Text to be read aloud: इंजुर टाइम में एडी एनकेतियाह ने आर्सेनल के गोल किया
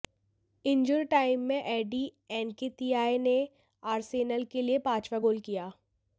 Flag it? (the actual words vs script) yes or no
yes